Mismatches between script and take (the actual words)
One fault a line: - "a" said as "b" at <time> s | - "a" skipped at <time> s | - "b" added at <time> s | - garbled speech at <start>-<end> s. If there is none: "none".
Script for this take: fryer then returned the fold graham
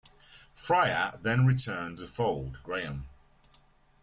none